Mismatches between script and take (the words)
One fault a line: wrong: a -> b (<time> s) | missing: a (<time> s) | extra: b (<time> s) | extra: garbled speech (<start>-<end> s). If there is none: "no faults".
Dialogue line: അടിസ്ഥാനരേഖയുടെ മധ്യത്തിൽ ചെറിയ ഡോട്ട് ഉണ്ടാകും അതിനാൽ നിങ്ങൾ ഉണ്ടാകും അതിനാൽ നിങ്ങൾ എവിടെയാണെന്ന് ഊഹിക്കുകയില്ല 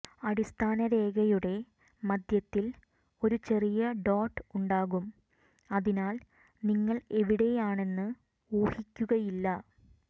extra: ഒരു (3.2 s)
missing: ഉണ്ടാകും അതിനാൽ നിങ്ങൾ (7.0 s)